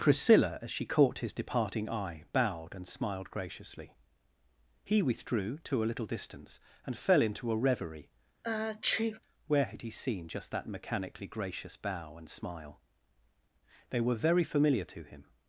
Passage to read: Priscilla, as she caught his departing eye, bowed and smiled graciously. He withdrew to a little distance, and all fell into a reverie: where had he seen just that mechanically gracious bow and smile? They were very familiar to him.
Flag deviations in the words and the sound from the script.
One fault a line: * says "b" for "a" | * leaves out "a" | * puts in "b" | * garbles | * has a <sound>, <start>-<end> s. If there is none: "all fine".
* leaves out "all"
* has a sneeze, 8.4-9.2 s